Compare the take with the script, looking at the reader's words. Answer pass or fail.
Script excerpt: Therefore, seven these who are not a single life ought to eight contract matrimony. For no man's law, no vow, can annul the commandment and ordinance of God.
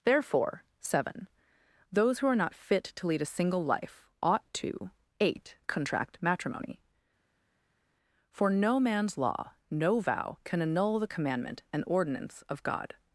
fail